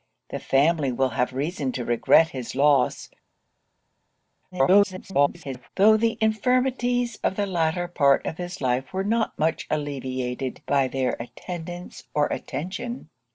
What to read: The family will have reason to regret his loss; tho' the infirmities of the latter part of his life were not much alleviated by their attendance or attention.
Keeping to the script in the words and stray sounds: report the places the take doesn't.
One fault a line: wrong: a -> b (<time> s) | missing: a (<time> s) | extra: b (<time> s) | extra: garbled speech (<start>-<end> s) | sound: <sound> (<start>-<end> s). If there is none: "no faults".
extra: garbled speech (4.5-5.7 s)